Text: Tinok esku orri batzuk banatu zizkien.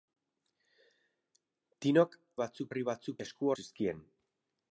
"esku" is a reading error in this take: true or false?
true